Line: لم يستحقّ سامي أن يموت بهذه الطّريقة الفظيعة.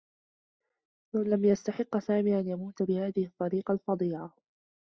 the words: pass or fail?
pass